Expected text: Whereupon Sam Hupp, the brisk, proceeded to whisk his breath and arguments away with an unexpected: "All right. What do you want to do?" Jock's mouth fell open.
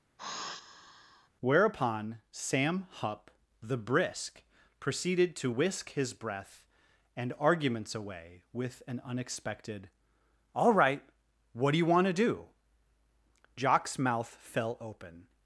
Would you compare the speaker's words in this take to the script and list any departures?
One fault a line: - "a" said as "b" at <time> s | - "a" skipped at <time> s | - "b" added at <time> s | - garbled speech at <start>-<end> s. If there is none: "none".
none